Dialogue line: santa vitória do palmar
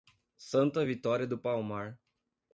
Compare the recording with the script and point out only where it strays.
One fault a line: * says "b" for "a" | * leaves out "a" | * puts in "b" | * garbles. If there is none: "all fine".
all fine